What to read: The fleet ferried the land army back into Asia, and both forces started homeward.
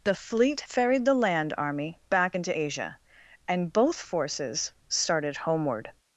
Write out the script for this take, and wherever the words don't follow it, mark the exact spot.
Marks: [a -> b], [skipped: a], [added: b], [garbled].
The fleet ferried the land army back into Asia, and both forces started homeward.